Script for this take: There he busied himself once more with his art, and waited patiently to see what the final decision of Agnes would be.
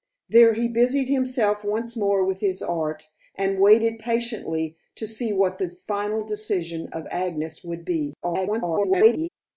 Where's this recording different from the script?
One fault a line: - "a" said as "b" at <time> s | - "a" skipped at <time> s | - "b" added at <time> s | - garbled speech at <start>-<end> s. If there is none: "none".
- garbled speech at 8.2-9.3 s